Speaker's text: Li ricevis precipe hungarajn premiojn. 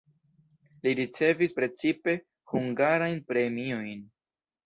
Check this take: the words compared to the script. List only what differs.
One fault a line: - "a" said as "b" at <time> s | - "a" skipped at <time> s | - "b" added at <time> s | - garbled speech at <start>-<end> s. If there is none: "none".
none